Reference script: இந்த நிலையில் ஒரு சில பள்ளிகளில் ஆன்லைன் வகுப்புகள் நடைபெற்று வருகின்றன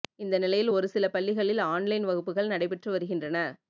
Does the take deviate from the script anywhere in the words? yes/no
no